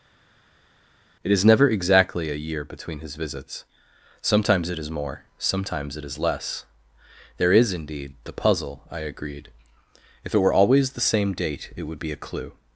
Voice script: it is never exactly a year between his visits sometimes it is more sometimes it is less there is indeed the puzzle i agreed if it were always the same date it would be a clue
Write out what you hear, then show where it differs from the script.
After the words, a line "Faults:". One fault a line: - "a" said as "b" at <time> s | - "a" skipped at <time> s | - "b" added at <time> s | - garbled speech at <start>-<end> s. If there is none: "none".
it is never exactly a year between his visits sometimes it is more sometimes it is less there is indeed the puzzle i agreed if it were always the same date it would be a clue
Faults:
none